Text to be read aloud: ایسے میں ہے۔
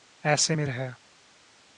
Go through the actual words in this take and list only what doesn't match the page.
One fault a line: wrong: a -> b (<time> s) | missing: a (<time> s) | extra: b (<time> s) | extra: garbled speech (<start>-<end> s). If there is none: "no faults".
no faults